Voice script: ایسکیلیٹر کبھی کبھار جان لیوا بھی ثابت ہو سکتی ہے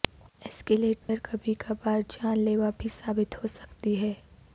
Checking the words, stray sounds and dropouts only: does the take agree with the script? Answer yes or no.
no